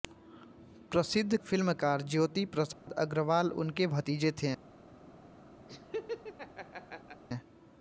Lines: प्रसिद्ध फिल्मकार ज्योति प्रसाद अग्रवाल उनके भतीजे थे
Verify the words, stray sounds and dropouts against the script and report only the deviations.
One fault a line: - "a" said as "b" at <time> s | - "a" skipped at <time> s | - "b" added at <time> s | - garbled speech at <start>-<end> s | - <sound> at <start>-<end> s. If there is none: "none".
- dropout at 2.7-2.9 s
- laugh at 5.7-7.2 s